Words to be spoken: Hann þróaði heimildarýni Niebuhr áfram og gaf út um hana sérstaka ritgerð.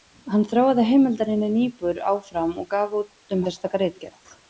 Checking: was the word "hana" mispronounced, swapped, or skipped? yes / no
yes